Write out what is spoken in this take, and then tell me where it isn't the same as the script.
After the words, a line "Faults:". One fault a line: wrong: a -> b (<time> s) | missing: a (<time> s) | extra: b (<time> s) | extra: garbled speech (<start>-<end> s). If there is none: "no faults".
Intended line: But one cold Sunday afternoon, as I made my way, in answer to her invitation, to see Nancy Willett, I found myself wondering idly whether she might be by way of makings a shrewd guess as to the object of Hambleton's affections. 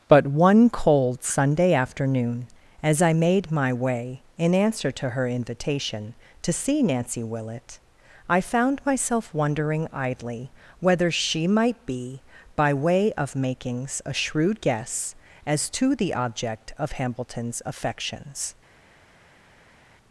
But one cold Sunday afternoon, as I made my way, in answer to her invitation, to see Nancy Willett, I found myself wondering idly whether she might be by way of makings a shrewd guess as to the object of Hambleton's affections.
Faults:
no faults